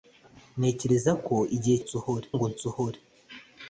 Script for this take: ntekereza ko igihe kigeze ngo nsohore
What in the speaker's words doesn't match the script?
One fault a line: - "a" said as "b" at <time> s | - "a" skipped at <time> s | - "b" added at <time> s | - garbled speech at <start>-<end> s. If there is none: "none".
- "kigeze" said as "nsohore" at 1.8 s